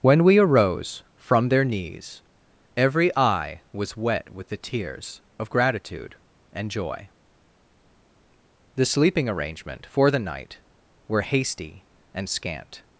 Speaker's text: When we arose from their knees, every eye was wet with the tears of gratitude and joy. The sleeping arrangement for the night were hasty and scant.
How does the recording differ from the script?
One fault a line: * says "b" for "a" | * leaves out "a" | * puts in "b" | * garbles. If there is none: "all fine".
all fine